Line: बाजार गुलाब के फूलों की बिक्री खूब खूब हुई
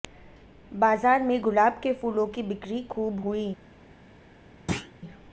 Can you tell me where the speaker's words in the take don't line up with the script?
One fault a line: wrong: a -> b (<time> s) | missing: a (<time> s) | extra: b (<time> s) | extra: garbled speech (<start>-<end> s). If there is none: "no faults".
extra: में (1.2 s)
missing: खूब (3.2 s)